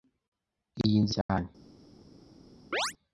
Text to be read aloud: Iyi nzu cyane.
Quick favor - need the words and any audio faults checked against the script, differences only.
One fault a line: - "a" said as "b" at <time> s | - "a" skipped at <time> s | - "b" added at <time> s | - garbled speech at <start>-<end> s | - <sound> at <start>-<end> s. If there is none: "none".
- dropout at 1.2-1.3 s
- chirp at 2.7-2.9 s